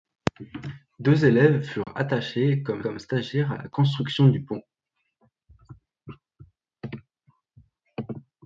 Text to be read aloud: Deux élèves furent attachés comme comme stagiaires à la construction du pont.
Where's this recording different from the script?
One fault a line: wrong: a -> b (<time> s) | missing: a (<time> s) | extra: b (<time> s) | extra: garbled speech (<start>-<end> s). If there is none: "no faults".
no faults